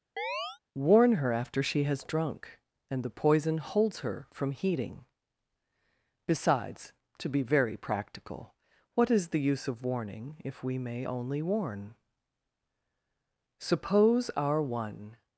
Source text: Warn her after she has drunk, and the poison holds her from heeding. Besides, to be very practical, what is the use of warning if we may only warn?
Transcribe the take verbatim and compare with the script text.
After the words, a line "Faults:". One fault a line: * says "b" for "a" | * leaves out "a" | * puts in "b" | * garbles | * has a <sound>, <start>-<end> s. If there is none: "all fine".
Warn her after she has drunk, and the poison holds her from heeding. Besides, to be very practical, what is the use of warning if we may only warn? Suppose our one
Faults:
* has a chirp, 0.2-0.6 s
* puts in "Suppose our one"